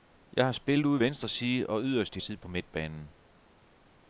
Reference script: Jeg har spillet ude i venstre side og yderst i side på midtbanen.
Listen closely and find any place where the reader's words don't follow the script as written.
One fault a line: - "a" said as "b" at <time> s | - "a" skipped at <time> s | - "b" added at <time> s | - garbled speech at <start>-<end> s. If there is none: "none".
none